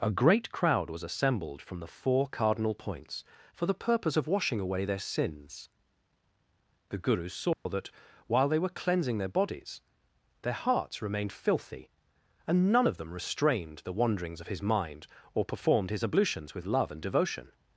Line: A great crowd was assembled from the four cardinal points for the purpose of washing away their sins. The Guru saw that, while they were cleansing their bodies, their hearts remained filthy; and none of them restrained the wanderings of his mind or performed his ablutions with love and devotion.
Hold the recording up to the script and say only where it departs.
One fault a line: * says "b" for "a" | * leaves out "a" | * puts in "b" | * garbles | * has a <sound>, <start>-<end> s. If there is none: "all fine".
* has a dropout, 7.5-7.7 s